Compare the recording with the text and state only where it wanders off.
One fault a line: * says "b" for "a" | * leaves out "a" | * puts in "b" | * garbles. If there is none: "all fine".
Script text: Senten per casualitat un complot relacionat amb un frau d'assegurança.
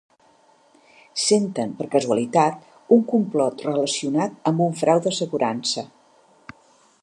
all fine